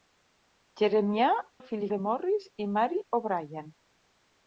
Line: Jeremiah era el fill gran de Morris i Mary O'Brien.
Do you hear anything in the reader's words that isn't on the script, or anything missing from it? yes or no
yes